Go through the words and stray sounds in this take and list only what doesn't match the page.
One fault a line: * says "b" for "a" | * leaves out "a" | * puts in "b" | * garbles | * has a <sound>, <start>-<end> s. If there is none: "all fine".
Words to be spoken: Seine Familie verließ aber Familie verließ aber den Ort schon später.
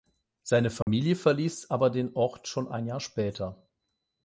* has a dropout, 0.8-0.9 s
* leaves out "Familie verließ aber"
* puts in "ein Jahr"